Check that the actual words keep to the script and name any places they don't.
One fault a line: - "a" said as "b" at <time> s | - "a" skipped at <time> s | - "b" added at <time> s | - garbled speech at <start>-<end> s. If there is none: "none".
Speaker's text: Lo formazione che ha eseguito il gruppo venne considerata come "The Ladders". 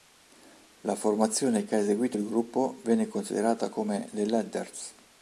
- "Lo" said as "La" at 0.8 s